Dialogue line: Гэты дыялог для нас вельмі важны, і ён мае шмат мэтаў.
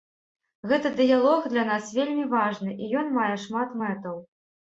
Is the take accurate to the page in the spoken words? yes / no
yes